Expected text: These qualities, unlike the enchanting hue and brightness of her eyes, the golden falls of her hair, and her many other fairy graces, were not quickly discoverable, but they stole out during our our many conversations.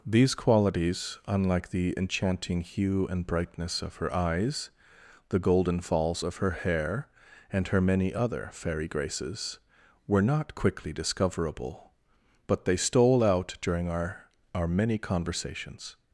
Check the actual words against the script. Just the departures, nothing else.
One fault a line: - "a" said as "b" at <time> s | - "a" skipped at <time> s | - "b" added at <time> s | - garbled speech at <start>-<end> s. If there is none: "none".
none